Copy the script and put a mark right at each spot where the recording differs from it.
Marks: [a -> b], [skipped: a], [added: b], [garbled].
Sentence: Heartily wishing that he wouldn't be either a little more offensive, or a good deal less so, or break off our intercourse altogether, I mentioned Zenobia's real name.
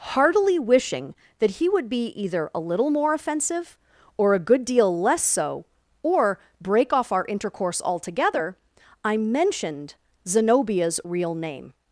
Heartily wishing that he [wouldn't -> would] be either a little more offensive, or a good deal less so, or break off our intercourse altogether, I mentioned Zenobia's real name.